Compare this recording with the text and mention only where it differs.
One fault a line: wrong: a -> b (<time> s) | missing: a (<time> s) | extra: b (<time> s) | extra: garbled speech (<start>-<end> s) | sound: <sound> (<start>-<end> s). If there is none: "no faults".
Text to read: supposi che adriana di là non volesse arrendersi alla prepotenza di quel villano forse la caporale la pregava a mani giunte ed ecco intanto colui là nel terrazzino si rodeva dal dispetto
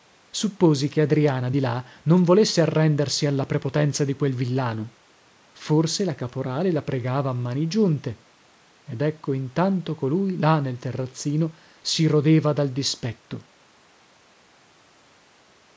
no faults